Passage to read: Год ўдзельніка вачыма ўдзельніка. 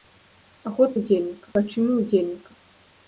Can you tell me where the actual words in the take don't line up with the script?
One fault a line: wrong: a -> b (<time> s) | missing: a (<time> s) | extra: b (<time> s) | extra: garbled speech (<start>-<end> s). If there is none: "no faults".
no faults